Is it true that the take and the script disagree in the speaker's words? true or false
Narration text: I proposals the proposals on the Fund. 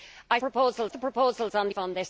false